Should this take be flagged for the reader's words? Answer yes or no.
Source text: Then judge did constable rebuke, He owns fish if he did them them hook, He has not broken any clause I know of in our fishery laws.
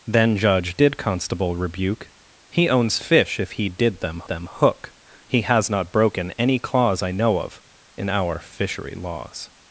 no